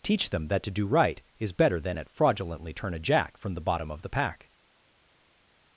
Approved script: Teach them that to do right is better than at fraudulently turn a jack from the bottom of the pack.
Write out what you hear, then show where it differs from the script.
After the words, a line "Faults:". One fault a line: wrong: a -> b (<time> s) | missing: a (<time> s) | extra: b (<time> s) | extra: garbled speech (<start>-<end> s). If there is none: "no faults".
Teach them that to do right is better than at fraudulently turn a jack from the bottom of the pack.
Faults:
no faults